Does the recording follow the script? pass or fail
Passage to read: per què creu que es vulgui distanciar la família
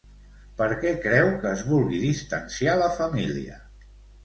pass